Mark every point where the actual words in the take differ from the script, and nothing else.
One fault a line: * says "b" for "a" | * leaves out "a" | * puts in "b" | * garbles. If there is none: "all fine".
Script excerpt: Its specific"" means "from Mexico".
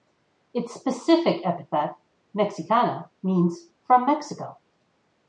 * puts in "epithet mexicana"